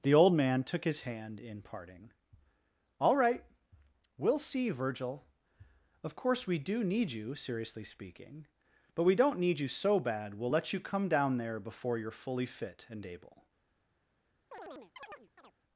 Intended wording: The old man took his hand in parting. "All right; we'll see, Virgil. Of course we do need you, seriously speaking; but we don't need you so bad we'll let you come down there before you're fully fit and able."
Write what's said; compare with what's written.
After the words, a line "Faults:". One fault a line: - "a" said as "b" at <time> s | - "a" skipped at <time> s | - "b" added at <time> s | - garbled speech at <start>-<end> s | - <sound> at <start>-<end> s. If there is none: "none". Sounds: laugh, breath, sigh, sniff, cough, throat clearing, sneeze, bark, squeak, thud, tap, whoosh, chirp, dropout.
The old man took his hand in parting. "All right; we'll see, Virgil. Of course we do need you, seriously speaking; but we don't need you so bad we'll let you come down there before you're fully fit and able."
Faults:
- chirp at 14.5-15.5 s